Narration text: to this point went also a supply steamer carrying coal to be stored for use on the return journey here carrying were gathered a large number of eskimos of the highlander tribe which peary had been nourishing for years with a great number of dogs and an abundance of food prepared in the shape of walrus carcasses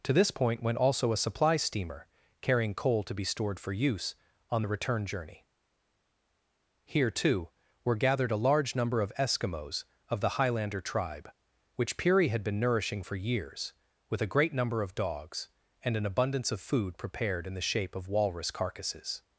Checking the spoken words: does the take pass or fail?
fail